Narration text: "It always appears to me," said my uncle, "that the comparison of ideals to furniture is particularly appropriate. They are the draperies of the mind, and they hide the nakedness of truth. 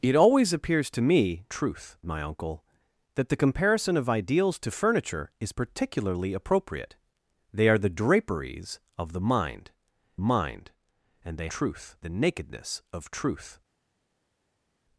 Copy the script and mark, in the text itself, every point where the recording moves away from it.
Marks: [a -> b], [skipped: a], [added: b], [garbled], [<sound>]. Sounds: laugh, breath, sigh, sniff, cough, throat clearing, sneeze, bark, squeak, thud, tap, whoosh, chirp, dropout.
"It always appears to me," [said -> truth] my uncle, "that the comparison of ideals to furniture is particularly appropriate. They are the draperies of the mind, [added: mind] and they [hide -> truth] the nakedness of truth.